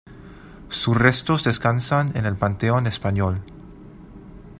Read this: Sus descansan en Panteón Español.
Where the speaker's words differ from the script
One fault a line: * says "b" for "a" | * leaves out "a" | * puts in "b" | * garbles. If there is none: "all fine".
* puts in "restos"
* puts in "el"